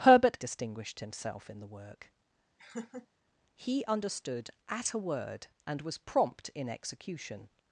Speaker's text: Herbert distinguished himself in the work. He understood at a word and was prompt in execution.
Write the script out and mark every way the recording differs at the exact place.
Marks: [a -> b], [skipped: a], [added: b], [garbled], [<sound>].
Herbert distinguished himself in the work. [laugh] He understood at a word and was prompt in execution.